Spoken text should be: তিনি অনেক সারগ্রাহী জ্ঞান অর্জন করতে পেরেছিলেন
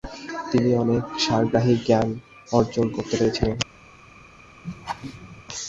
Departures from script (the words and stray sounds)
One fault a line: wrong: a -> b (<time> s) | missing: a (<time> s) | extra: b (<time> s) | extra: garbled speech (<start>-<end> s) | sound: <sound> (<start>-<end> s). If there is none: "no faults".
sound: laugh (4.6-5.4 s)